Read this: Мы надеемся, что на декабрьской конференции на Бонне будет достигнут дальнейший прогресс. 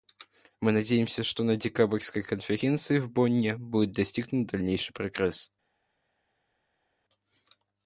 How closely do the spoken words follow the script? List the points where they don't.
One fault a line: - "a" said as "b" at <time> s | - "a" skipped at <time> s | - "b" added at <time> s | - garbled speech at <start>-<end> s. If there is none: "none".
- "на" said as "в" at 3.0 s